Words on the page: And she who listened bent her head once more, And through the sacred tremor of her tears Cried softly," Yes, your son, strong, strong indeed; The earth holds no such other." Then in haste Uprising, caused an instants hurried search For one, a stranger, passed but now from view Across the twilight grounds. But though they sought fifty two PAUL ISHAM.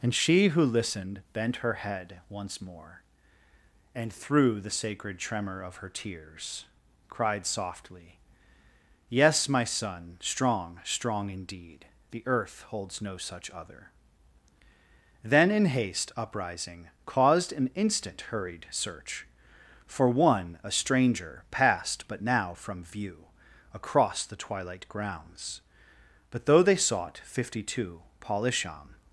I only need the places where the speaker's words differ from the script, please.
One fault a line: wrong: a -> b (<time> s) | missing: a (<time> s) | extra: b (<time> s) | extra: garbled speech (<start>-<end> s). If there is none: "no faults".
wrong: your -> my (9.5 s)
wrong: instants -> instant (17.7 s)